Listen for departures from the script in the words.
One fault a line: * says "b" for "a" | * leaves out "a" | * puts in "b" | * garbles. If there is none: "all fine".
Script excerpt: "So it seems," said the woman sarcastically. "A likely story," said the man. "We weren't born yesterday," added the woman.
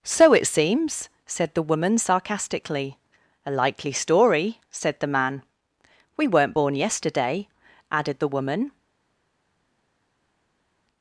all fine